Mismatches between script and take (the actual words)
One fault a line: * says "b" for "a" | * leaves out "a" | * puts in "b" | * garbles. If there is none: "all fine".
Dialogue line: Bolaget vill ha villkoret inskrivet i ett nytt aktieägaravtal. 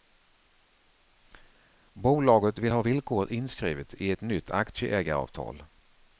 all fine